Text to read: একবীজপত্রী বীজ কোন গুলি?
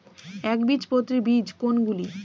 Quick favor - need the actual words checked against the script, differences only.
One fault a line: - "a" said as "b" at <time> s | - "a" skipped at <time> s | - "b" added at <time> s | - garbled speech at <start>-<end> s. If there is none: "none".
none